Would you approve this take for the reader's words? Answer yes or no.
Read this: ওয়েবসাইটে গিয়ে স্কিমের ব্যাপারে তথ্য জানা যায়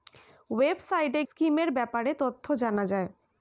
no